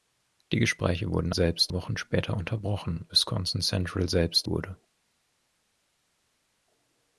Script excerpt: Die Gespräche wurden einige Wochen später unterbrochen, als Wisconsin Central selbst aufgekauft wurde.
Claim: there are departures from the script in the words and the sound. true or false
true